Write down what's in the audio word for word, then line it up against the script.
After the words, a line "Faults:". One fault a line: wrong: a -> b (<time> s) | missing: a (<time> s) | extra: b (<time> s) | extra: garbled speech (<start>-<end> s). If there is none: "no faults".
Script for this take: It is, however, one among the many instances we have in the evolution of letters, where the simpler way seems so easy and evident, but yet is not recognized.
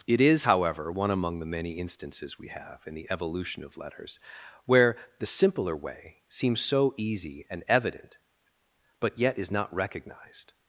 It is, however, one among the many instances we have in the evolution of letters, where the simpler way seems so easy and evident, but yet is not recognized.
Faults:
no faults